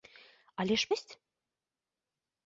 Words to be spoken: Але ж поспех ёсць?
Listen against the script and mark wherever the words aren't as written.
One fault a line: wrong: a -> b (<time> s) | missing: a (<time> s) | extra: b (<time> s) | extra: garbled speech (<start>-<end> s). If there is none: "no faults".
missing: поспех (0.9 s)